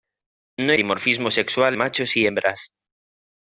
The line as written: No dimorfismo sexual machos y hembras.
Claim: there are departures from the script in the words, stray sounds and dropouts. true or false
false